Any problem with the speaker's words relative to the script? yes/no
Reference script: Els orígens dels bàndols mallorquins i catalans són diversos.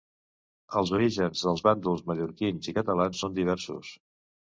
no